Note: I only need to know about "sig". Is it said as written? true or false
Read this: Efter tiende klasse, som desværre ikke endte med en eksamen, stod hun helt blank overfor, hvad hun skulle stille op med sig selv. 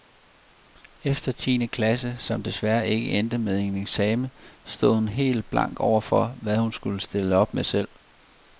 false